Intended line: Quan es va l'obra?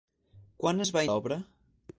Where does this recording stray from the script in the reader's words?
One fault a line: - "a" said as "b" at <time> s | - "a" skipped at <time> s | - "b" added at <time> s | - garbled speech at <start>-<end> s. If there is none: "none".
none